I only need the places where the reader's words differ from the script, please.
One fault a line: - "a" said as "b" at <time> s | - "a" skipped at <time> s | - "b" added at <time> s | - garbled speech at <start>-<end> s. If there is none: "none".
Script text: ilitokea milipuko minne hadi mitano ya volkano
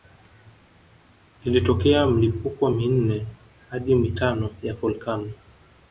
none